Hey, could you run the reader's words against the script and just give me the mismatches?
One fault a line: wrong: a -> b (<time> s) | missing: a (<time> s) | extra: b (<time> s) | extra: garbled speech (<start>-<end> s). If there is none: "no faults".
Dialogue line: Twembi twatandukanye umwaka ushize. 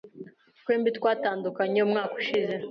no faults